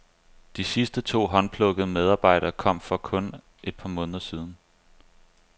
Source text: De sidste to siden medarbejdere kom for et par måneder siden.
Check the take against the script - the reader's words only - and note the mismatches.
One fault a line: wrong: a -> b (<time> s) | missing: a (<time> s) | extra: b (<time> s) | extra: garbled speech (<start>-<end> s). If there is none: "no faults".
wrong: siden -> håndplukkede (1.3 s)
extra: kun (3.0 s)